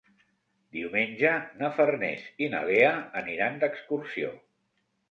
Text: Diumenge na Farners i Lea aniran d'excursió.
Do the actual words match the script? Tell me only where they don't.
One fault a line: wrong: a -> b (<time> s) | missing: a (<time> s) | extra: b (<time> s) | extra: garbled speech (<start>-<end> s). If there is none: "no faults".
extra: na (2.5 s)